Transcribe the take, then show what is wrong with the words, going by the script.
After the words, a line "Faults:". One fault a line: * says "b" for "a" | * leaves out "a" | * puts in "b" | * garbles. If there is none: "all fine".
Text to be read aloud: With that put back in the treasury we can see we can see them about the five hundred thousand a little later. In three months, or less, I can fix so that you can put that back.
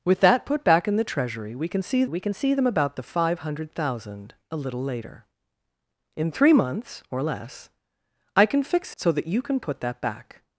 With that put back in the treasury we can see we can see them about the five hundred thousand a little later. In three months, or less, I can fix so that you can put that back.
Faults:
all fine